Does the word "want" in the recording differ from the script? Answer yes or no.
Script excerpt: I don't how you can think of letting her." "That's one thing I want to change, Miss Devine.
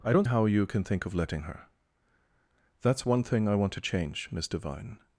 no